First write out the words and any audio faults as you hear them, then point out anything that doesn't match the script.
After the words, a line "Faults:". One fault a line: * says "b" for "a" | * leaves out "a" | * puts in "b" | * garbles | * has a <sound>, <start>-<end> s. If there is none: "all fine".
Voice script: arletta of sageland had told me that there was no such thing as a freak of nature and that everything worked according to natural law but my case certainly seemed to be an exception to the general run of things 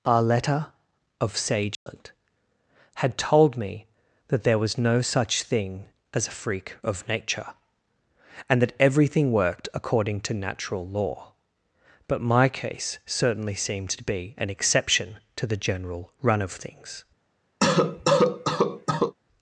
arletta of sageland had told me that there was no such thing as a freak of nature and that everything worked according to natural law but my case certainly seemed to be an exception to the general run of things
Faults:
* has a dropout, 1.7-1.9 s
* has a cough, 17.6-19.1 s